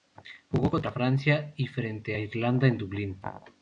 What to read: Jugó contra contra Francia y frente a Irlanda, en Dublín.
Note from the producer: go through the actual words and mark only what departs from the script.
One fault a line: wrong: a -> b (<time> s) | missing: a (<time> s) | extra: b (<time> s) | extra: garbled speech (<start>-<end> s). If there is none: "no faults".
missing: contra (0.9 s)